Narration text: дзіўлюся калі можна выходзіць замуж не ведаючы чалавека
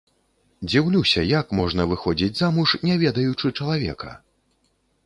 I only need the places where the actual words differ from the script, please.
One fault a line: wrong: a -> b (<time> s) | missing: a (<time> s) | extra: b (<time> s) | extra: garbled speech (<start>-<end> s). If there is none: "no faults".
wrong: калі -> як (1.4 s)